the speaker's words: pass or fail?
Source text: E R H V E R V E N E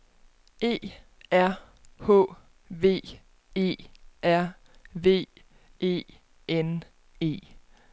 pass